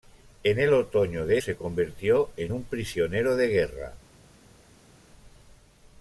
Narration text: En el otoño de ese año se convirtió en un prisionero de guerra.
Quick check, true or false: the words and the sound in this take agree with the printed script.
false